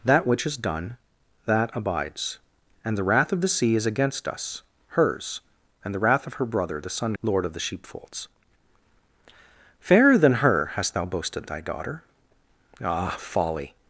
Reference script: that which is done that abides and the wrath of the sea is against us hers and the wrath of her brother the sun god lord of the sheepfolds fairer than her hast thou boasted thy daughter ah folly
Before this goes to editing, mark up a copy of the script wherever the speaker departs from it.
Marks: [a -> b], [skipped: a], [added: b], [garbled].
that which is done that abides and the wrath of the sea is against us hers and the wrath of her brother the sun [skipped: god] lord of the sheepfolds fairer than her hast thou boasted thy daughter ah folly